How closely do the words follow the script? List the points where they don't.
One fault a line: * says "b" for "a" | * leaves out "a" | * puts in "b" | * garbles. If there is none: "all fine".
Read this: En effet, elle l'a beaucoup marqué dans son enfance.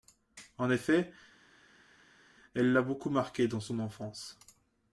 all fine